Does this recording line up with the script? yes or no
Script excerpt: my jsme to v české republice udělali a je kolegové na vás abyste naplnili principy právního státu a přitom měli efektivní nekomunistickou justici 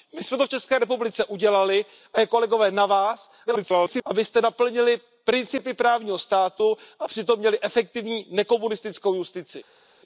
no